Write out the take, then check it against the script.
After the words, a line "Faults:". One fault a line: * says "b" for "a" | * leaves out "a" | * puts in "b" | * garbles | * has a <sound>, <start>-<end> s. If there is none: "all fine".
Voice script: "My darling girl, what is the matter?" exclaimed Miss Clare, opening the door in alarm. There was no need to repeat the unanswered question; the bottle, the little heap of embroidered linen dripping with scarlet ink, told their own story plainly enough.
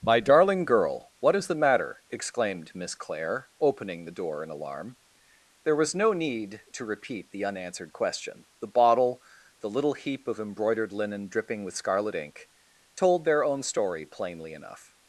"My darling girl, what is the matter?" exclaimed Miss Clare, opening the door in alarm. There was no need to repeat the unanswered question; the bottle, the little heap of embroidered linen dripping with scarlet ink, told their own story plainly enough.
Faults:
all fine